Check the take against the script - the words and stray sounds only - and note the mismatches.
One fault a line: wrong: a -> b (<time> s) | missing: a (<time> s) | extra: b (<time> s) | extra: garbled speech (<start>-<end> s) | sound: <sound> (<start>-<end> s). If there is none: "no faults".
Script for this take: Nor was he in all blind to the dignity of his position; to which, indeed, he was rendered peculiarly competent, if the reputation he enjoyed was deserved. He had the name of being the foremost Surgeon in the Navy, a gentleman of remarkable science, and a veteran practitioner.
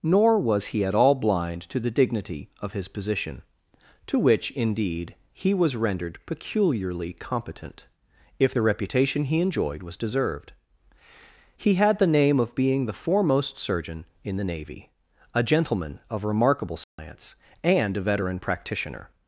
wrong: in -> at (0.8 s)
sound: dropout (16.8-17.0 s)